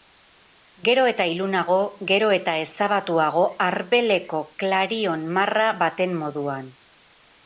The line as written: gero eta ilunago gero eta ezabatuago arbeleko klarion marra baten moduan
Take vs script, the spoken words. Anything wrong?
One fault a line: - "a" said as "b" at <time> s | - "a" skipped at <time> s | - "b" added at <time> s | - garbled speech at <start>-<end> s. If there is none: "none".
none